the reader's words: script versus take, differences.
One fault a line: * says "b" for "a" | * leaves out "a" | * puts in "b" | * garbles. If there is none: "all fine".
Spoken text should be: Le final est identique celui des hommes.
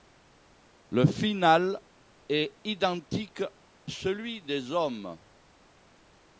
all fine